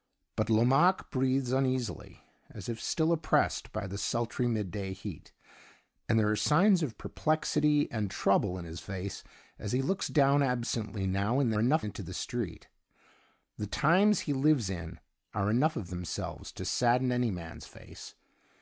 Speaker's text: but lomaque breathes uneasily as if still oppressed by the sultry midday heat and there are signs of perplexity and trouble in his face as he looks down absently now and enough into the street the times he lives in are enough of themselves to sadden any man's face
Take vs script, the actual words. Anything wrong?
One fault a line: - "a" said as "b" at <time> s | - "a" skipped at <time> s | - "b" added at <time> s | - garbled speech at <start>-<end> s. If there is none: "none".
none